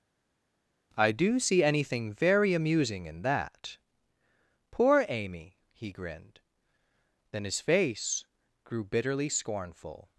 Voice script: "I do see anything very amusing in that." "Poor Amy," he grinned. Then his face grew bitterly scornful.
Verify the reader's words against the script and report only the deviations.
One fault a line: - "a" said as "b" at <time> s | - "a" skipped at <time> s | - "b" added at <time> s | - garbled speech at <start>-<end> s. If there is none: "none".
none